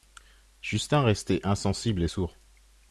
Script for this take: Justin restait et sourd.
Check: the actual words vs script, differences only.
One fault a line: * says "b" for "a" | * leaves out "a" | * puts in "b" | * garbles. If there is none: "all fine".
* puts in "insensible"